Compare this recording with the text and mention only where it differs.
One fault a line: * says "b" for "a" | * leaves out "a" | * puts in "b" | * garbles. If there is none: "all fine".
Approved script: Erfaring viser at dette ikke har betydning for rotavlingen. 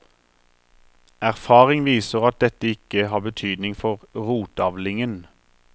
all fine